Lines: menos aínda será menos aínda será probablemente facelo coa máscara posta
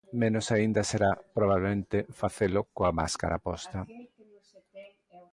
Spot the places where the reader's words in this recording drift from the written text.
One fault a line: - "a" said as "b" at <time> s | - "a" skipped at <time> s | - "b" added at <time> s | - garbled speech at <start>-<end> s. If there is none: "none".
- "menos aínda será" skipped at 1.1 s